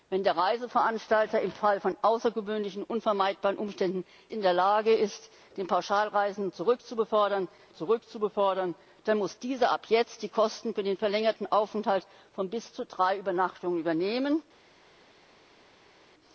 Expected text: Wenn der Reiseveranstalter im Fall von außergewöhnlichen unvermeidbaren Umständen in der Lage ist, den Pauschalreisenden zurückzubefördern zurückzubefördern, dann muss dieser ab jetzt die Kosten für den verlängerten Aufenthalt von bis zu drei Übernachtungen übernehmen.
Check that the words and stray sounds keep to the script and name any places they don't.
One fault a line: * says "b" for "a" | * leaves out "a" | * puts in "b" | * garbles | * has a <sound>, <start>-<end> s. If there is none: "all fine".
all fine